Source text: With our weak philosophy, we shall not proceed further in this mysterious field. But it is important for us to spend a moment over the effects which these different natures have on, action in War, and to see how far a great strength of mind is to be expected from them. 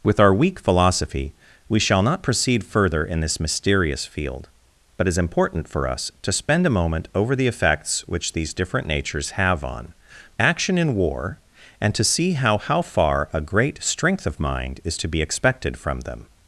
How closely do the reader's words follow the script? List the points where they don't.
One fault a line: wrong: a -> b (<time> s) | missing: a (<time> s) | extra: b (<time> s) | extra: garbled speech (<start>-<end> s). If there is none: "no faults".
extra: how (12.6 s)